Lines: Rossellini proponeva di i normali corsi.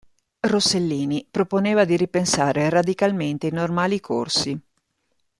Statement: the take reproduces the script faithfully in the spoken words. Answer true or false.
false